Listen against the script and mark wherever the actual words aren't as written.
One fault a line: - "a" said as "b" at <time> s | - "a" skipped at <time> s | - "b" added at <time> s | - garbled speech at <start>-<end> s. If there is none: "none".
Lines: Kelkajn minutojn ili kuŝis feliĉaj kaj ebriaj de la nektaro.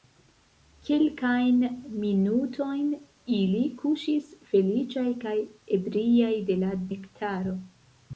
none